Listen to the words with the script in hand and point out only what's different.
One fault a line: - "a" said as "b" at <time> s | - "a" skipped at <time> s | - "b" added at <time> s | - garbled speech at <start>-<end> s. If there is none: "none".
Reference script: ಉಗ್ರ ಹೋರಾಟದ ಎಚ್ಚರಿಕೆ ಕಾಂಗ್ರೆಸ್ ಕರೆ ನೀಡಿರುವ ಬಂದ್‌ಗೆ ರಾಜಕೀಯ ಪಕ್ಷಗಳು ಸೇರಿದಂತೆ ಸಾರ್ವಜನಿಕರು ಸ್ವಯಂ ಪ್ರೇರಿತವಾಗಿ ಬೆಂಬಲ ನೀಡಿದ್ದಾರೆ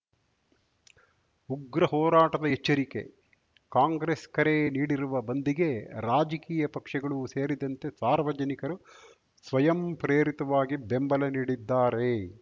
none